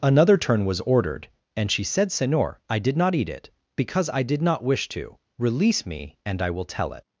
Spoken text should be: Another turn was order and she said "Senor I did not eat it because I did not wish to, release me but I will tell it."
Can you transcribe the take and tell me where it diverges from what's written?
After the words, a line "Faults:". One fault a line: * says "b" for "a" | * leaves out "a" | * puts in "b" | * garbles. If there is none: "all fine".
Another turn was ordered and she said "Senor I did not eat it because I did not wish to, release me and I will tell it."
Faults:
* says "ordered" for "order"
* says "and" for "but"